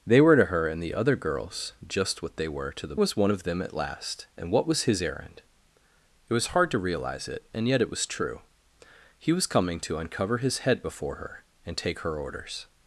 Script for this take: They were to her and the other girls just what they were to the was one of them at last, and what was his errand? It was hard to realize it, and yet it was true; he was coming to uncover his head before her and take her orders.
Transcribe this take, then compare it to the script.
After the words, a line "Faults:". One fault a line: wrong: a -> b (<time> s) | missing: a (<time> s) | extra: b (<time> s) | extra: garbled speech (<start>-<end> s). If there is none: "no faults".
They were to her and the other girls just what they were to the was one of them at last, and what was his errand? It was hard to realize it, and yet it was true; he was coming to uncover his head before her and take her orders.
Faults:
no faults